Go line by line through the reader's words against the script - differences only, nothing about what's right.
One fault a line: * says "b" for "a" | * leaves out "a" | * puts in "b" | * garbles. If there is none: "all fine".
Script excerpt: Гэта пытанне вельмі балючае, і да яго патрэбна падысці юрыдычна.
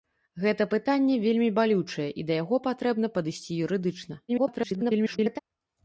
* garbles